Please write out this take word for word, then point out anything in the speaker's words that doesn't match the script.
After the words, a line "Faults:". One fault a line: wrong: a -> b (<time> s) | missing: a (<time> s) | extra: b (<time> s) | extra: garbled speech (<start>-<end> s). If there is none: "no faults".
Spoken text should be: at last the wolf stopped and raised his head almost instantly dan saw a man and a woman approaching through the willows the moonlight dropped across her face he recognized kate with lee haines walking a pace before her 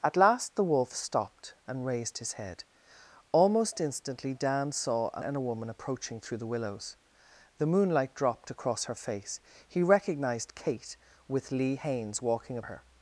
at last the wolf stopped and raised his head almost instantly dan saw a and a woman approaching through the willows the moonlight dropped across her face he recognized kate with lee haines walking a her
Faults:
missing: man (5.2 s)
missing: pace before (12.6 s)